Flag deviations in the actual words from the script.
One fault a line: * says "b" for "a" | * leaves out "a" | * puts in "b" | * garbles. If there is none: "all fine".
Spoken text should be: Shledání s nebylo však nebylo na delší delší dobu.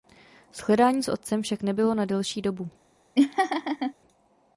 * says "otcem" for "nebylo"
* leaves out "delší"